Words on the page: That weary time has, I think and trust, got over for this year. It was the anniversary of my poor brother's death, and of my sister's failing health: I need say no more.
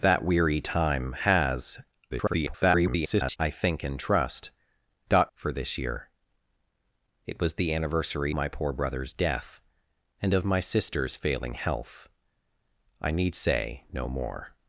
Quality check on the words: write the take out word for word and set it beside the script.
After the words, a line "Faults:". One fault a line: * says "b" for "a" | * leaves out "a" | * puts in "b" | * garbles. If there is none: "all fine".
That weary time has, [garbled] I think and trust, got for this year. It was the anniversary my poor brother's death, and of my sister's failing health: I need say no more.
Faults:
* garbles
* leaves out "over"
* leaves out "of"